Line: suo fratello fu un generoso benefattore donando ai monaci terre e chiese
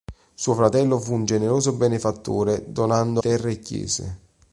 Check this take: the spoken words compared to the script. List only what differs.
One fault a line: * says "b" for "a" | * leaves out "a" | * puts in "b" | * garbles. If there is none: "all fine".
* leaves out "ai monaci"